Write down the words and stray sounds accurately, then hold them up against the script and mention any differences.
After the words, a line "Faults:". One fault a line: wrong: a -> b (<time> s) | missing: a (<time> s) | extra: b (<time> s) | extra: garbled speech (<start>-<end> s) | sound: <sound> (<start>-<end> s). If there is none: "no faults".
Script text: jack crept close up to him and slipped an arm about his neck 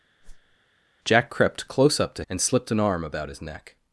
jack crept close up to and slipped an arm about his neck
Faults:
sound: whoosh (0.2-0.6 s)
missing: him (2.2 s)